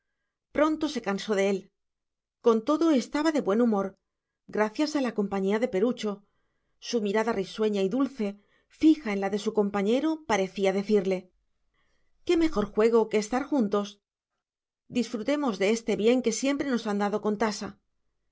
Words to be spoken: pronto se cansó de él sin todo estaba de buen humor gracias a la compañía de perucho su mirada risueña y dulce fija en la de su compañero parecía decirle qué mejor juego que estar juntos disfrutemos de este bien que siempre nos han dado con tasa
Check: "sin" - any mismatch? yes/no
yes